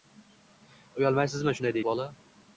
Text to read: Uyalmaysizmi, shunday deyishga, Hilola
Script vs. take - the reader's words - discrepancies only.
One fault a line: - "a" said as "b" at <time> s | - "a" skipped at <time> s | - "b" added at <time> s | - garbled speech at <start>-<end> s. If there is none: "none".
- "deyishga" skipped at 1.8 s